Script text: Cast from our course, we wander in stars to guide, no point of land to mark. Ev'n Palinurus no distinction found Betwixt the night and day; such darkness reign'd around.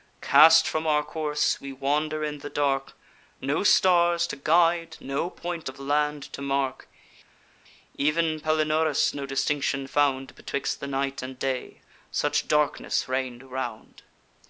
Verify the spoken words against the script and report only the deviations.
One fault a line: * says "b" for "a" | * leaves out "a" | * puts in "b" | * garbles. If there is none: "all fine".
* puts in "the dark No"